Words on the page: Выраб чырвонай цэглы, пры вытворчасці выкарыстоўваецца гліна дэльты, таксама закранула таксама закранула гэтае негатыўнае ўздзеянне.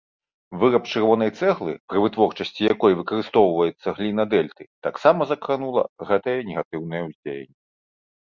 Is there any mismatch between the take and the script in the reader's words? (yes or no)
yes